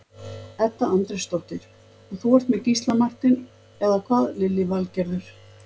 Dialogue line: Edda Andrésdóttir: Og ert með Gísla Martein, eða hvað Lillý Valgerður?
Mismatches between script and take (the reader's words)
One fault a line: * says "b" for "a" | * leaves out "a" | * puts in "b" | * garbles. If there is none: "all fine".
* puts in "þú"